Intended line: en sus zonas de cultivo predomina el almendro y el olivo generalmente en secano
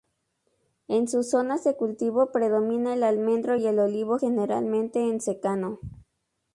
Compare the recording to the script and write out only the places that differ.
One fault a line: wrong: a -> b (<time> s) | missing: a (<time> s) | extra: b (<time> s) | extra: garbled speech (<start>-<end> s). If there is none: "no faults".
no faults